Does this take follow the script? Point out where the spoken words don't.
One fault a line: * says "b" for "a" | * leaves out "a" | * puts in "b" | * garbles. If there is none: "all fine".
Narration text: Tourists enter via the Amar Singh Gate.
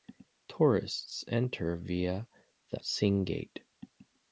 * leaves out "Amar"